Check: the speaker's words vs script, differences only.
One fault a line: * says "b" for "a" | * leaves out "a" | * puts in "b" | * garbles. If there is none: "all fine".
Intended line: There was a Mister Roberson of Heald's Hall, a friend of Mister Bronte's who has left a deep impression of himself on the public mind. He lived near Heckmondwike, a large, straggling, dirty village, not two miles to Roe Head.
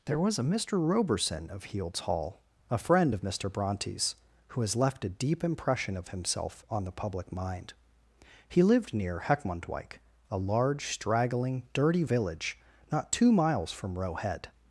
* says "from" for "to"